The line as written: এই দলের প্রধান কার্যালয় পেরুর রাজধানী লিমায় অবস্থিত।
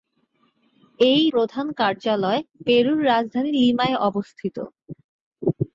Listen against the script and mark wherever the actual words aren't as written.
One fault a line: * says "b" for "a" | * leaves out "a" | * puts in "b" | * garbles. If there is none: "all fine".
* leaves out "দলের"